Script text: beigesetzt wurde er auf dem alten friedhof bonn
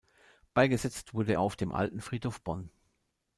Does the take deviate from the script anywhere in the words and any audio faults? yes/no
no